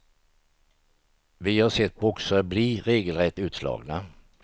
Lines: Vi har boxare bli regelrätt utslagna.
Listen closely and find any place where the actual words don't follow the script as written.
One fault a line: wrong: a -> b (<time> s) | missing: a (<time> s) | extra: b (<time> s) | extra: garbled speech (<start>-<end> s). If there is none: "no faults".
extra: sett (1.7 s)